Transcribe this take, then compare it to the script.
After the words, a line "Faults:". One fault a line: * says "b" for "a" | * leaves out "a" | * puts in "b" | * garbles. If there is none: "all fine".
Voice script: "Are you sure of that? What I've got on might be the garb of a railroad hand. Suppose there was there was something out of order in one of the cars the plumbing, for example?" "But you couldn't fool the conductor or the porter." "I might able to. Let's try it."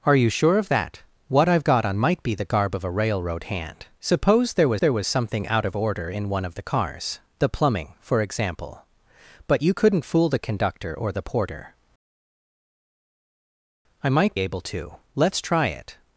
"Are you sure of that? What I've got on might be the garb of a railroad hand. Suppose there was there was something out of order in one of the cars the plumbing, for example?" "But you couldn't fool the conductor or the porter." "I might able to. Let's try it."
Faults:
all fine